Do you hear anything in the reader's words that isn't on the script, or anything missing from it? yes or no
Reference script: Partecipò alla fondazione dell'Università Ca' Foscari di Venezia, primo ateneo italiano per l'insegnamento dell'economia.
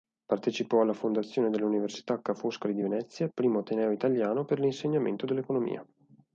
no